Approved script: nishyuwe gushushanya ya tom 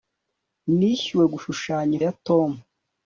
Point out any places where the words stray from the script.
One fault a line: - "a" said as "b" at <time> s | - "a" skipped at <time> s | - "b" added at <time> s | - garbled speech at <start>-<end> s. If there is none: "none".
none